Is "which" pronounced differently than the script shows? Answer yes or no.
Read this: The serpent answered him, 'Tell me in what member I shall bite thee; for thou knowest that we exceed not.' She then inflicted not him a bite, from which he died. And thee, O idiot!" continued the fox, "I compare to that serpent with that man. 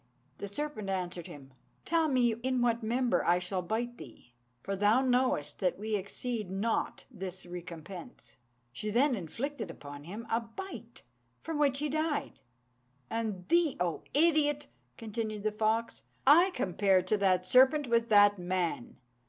no